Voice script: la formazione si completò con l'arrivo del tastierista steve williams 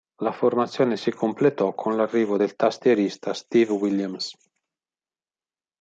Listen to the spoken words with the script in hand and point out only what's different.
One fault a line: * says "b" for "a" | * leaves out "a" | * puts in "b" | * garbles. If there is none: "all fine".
all fine